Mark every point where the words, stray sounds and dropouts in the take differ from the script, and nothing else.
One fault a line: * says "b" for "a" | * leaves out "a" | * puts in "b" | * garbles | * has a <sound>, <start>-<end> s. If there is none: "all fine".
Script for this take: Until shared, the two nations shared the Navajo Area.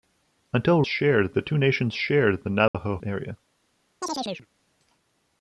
* has a dropout, 2.7-2.7 s
* has a chirp, 4.0-4.5 s